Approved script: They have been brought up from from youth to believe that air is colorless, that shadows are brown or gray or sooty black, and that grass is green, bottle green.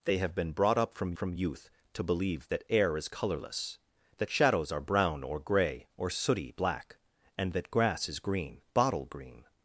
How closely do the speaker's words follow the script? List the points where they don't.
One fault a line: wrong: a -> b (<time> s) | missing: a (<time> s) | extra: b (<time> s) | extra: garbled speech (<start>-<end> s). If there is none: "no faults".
no faults